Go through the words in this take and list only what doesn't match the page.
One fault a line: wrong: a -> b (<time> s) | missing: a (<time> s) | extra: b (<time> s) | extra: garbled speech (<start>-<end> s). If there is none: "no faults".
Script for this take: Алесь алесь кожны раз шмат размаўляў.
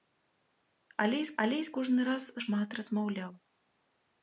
no faults